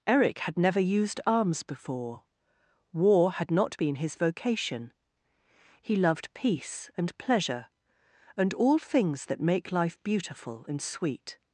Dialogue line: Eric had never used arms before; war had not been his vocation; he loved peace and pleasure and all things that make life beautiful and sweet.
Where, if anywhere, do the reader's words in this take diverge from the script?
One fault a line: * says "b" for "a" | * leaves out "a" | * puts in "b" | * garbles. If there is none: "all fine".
all fine